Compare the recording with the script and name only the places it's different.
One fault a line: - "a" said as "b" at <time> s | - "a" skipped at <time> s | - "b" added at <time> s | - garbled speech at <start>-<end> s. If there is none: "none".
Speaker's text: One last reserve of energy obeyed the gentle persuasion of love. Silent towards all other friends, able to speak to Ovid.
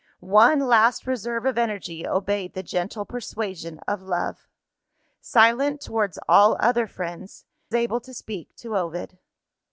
none